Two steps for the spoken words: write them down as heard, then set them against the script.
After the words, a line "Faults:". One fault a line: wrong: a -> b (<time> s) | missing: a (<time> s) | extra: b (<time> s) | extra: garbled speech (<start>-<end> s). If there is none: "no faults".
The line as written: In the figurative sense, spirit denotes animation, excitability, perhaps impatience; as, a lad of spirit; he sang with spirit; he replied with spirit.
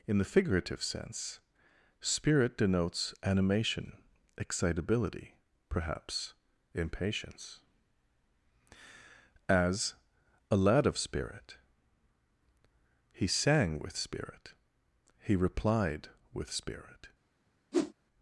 In the figurative sense, spirit denotes animation, excitability, perhaps impatience; as, a lad of spirit; he sang with spirit; he replied with spirit.
Faults:
no faults